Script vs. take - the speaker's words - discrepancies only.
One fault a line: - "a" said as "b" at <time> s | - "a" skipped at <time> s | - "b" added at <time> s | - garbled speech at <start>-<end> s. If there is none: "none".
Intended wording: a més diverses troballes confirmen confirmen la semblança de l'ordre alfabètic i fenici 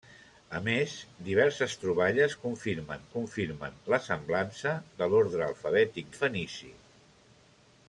none